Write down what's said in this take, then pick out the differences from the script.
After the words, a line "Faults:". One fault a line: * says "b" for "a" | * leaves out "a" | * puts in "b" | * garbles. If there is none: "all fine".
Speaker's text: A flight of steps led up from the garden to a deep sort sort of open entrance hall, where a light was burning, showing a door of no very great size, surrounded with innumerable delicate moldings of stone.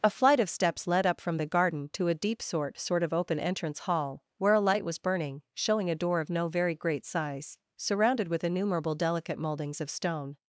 A flight of steps led up from the garden to a deep sort sort of open entrance hall, where a light was burning, showing a door of no very great size, surrounded with innumerable delicate moldings of stone.
Faults:
all fine